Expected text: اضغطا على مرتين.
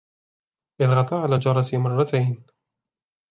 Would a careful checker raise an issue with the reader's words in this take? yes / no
yes